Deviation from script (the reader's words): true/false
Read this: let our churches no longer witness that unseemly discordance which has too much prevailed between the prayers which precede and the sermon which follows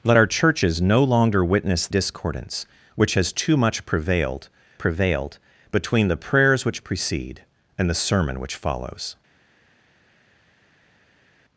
true